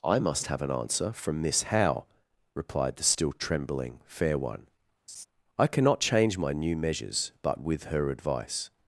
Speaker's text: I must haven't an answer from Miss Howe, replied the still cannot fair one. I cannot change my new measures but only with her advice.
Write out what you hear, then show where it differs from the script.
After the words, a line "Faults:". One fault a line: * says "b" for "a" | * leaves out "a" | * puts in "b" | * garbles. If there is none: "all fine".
I must have an answer from Miss Howe, replied the still trembling fair one. I cannot change my new measures but with her advice.
Faults:
* says "have" for "haven't"
* says "trembling" for "cannot"
* leaves out "only"